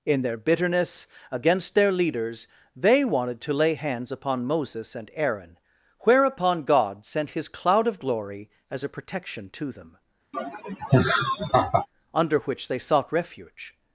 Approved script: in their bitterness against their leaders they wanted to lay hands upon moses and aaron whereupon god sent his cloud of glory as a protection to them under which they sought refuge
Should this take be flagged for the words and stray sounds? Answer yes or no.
yes